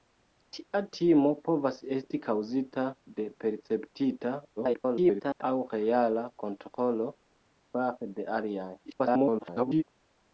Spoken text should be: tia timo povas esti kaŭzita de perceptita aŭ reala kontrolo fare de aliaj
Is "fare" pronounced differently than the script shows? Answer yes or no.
no